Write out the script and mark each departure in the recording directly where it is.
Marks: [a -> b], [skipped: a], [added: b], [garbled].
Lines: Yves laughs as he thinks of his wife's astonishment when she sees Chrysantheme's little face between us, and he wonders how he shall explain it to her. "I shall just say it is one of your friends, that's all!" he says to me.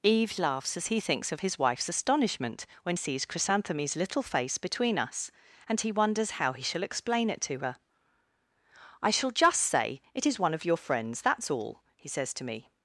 Yves laughs as he thinks of his wife's astonishment when [skipped: she] sees Chrysantheme's little face between us, and he wonders how he shall explain it to her. "I shall just say it is one of your friends, that's all!" he says to me.